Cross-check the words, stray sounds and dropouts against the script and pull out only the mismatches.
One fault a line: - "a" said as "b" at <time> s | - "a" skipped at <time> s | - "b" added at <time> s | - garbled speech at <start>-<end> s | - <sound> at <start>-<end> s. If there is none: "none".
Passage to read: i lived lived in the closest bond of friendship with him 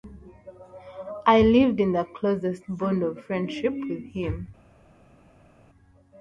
- "lived" skipped at 1.8 s